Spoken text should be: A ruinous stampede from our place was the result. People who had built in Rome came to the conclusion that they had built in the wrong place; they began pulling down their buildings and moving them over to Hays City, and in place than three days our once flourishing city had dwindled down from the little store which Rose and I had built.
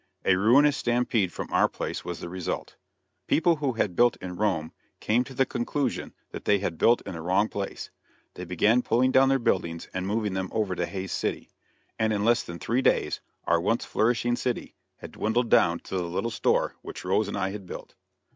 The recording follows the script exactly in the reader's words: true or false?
false